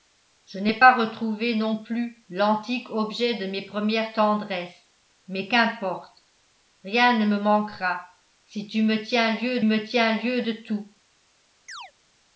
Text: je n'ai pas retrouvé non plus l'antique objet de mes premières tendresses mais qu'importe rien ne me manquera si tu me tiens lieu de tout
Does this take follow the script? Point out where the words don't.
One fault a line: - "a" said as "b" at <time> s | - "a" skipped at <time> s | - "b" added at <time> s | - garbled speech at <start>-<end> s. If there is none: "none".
- "me tiens lieu" added at 9.6 s